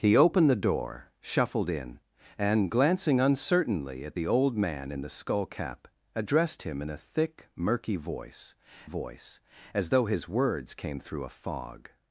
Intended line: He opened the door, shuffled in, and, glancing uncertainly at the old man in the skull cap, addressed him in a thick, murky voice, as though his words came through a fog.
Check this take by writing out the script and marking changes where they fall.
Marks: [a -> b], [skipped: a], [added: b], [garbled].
He opened the door, shuffled in, and, glancing uncertainly at the old man in the skull cap, addressed him in a thick, murky voice, [added: voice] as though his words came through a fog.